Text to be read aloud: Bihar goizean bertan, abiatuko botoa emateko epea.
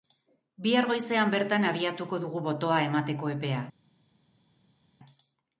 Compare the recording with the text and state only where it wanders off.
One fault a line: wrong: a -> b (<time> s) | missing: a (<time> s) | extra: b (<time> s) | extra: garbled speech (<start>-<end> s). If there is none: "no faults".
extra: dugu (2.2 s)